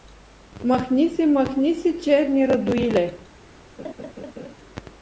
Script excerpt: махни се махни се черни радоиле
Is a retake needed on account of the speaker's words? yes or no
no